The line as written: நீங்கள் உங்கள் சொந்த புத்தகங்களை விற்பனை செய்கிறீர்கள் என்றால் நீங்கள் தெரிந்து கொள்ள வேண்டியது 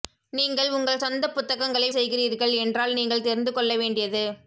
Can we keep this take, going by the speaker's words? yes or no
no